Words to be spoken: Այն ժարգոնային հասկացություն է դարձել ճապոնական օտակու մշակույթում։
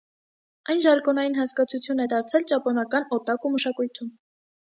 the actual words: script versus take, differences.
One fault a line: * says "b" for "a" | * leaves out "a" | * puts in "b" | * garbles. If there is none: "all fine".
all fine